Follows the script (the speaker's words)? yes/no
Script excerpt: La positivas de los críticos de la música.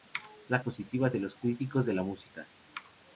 yes